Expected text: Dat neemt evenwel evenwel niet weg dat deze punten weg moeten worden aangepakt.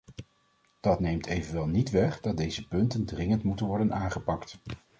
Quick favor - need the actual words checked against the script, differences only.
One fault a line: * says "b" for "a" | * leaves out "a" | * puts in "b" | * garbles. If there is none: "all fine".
* leaves out "evenwel"
* says "dringend" for "weg"